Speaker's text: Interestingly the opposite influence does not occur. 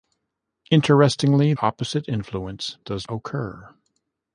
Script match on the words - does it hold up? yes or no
no